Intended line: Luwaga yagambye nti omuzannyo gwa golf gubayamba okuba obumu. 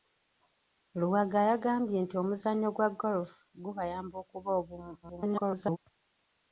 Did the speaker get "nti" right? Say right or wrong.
right